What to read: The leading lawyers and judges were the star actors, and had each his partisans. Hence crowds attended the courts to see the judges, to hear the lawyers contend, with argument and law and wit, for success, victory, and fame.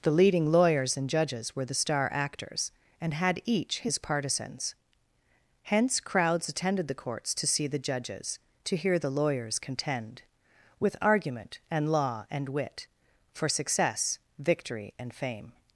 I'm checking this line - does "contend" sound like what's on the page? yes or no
yes